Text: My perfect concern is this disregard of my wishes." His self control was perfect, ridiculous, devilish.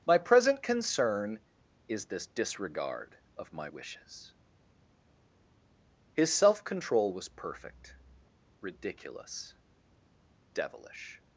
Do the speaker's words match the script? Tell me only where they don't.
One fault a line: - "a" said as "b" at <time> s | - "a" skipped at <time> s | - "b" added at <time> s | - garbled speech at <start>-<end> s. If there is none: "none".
- "perfect" said as "present" at 0.2 s